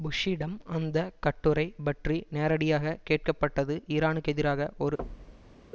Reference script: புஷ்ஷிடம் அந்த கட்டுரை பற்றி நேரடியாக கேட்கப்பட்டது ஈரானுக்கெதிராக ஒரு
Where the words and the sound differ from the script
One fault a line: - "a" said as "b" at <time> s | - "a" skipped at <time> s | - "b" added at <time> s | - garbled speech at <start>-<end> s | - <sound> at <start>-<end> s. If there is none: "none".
- thud at 5.0-5.6 s